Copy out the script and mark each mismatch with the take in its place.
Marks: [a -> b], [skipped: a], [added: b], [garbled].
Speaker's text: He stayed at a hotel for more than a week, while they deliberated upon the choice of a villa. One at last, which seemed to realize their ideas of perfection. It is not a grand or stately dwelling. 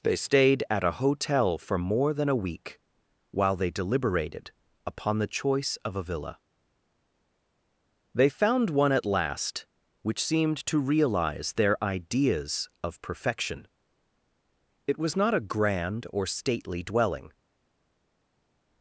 [He -> They] stayed at a hotel for more than a week, while they deliberated upon the choice of a villa. [added: They found] One at last, which seemed to realize their ideas of perfection. It [is -> was] not a grand or stately dwelling.